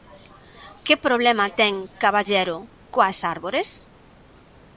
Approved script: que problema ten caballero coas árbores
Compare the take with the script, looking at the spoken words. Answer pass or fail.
pass